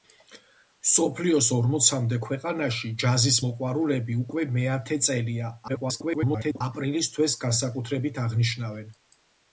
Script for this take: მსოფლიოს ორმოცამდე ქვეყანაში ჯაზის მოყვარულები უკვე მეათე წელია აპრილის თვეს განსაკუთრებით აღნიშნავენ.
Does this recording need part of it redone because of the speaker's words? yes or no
yes